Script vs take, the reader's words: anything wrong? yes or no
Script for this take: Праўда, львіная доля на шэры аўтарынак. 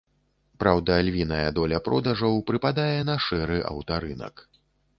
yes